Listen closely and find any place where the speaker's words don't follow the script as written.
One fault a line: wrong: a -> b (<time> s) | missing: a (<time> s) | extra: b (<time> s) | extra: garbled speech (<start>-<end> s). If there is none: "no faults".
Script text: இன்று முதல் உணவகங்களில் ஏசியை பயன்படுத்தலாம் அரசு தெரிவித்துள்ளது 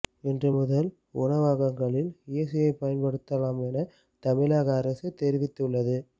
extra: என தமிழக (3.7 s)